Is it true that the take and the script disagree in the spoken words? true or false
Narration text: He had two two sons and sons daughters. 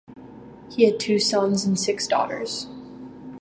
true